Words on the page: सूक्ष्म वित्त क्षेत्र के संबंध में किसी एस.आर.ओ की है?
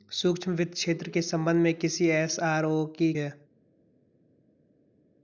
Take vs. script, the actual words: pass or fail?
pass